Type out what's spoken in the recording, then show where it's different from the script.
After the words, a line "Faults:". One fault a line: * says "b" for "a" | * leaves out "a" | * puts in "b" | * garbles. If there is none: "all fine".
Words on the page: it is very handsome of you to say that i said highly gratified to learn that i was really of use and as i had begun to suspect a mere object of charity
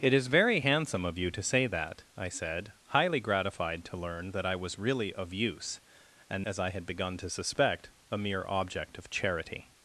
it is very handsome of you to say that i said highly gratified to learn that i was really of use and as i had begun to suspect a mere object of charity
Faults:
all fine